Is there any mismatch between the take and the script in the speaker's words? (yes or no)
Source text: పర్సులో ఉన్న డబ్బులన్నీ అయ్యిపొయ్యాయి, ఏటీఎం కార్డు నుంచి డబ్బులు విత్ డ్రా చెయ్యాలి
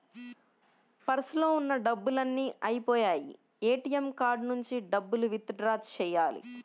no